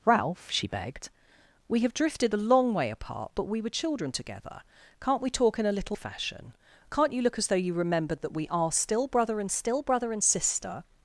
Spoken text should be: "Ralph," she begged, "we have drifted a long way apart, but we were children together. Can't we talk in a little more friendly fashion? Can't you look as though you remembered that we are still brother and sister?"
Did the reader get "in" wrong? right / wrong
right